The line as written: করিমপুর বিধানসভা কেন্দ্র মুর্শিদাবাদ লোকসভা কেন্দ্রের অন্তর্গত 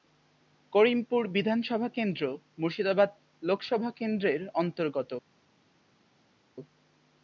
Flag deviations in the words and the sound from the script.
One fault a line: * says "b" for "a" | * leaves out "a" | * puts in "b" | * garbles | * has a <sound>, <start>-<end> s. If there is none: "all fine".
all fine